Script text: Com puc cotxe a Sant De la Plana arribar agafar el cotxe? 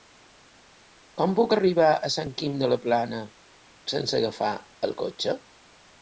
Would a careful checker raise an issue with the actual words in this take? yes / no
yes